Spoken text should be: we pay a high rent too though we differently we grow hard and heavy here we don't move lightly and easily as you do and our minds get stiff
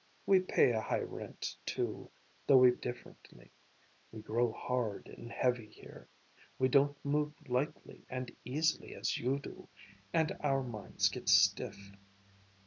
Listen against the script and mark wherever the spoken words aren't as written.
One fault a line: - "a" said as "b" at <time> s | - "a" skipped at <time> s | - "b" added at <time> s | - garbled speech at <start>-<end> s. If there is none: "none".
none